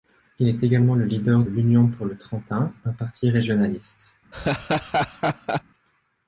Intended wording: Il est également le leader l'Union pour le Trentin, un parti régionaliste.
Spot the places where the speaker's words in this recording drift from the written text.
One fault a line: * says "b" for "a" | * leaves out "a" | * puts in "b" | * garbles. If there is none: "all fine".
all fine